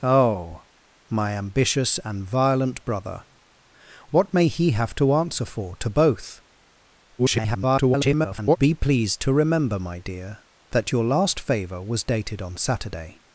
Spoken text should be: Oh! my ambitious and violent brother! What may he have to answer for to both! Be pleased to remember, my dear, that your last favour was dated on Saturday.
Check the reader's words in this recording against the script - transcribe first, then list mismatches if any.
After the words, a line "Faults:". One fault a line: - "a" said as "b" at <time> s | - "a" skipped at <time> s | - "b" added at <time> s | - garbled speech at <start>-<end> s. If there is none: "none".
Oh! my ambitious and violent brother! What may he have to answer for to both! [garbled] Be pleased to remember, my dear, that your last favour was dated on Saturday.
Faults:
- garbled speech at 7.2-8.6 s